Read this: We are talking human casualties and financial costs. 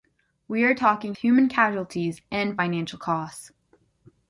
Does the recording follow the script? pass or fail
pass